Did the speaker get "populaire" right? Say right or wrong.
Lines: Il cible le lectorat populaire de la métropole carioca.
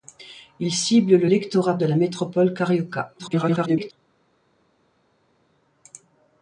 wrong